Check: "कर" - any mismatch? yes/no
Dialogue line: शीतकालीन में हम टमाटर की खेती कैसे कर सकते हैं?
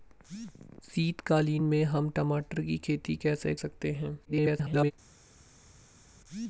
yes